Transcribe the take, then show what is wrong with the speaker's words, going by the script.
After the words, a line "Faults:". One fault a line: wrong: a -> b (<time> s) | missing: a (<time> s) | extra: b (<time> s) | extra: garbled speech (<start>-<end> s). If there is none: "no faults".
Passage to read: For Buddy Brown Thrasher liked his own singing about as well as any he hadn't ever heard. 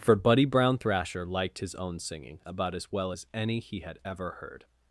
For Buddy Brown Thrasher liked his own singing about as well as any he had ever heard.
Faults:
wrong: hadn't -> had (3.8 s)